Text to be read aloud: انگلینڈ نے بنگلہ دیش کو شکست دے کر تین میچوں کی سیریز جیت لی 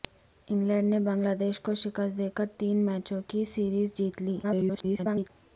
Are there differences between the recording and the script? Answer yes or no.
yes